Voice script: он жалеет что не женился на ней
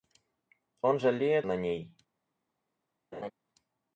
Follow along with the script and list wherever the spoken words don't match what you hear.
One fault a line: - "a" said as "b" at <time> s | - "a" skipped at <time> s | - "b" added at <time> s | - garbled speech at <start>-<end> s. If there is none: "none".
- "что не женился" skipped at 1.5 s